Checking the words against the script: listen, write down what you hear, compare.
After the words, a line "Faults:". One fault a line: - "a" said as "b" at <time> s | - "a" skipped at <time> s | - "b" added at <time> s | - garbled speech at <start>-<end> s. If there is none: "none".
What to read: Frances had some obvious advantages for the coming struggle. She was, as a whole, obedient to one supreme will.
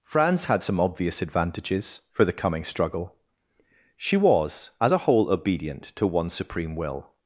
France had some obvious advantages for the coming struggle. She was, as a whole, obedient to one supreme will.
Faults:
- "Frances" said as "France" at 0.0 s